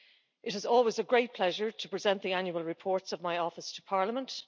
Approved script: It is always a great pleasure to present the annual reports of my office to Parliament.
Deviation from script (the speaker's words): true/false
false